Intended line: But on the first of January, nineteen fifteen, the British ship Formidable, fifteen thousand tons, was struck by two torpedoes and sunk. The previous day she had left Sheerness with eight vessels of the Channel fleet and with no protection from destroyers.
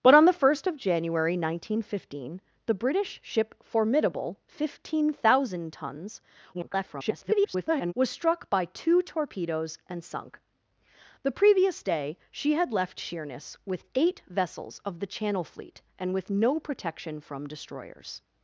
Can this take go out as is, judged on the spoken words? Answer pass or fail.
fail